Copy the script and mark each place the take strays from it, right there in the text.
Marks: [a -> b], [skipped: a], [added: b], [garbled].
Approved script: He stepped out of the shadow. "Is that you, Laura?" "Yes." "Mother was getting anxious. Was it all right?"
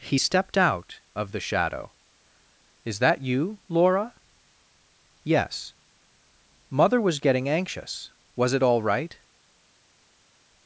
He stepped out of the shadow. "Is that you, Laura?" "Yes." "Mother was getting anxious. Was it all right?"